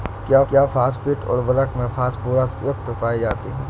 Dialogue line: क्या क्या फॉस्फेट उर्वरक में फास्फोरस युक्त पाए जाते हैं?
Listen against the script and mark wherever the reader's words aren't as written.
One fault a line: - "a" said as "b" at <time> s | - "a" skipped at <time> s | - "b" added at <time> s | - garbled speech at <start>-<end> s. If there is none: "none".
none